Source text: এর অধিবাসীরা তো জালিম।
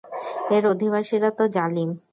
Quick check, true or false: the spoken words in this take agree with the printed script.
true